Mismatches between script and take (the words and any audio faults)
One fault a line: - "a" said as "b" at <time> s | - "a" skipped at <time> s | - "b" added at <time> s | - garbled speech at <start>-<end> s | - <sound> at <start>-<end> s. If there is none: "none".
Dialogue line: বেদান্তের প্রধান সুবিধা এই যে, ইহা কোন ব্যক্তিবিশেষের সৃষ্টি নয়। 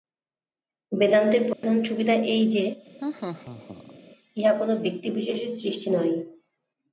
- dropout at 1.5-1.6 s
- laugh at 3.0-4.0 s